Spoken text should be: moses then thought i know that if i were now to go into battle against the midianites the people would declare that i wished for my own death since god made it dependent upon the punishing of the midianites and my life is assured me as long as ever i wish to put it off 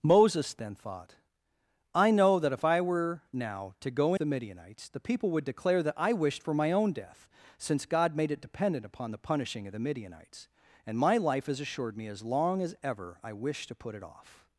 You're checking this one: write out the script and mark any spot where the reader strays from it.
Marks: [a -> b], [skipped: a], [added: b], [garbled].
moses then thought i know that if i were now to go [skipped: into battle against] the midianites the people would declare that i wished for my own death since god made it dependent upon the punishing of the midianites and my life is assured me as long as ever i wish to put it off